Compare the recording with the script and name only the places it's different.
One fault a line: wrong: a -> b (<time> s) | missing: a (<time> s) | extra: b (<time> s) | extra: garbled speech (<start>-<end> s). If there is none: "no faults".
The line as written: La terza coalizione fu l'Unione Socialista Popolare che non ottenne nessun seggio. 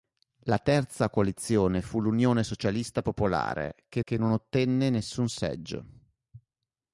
extra: che (4.0 s)